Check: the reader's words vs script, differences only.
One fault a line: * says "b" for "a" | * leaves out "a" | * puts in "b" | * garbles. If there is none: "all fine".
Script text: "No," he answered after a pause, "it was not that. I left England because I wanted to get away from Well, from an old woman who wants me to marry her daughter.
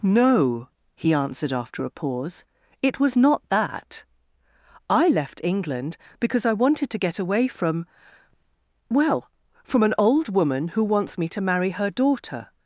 all fine